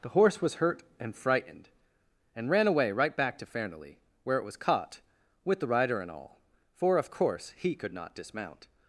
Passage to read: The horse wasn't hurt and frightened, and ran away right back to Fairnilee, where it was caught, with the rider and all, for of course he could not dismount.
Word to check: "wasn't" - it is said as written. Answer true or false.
false